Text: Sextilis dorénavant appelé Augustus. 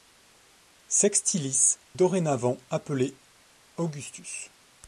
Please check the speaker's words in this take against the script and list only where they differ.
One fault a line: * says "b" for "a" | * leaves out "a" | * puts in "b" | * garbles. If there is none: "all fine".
all fine